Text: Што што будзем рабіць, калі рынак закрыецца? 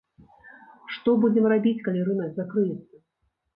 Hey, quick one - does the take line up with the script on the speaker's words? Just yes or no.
no